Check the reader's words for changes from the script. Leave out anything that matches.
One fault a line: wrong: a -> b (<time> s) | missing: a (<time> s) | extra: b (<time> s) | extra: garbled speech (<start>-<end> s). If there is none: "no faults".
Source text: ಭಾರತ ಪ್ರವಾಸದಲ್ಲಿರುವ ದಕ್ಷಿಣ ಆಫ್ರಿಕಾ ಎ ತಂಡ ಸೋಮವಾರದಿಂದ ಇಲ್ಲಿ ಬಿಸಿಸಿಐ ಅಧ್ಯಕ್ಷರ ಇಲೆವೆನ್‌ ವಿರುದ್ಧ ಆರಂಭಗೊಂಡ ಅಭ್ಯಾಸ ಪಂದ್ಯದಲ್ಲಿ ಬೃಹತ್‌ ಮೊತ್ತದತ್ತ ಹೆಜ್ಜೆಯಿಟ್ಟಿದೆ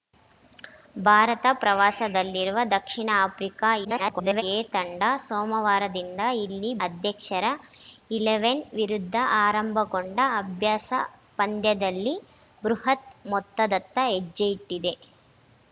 extra: garbled speech (3.8-4.4 s)
missing: ಬಿಸಿಸಿಐ (6.7 s)